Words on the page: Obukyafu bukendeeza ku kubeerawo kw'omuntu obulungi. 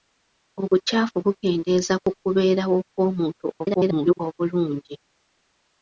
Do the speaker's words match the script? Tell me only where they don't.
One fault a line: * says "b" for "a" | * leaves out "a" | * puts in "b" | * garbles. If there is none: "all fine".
* garbles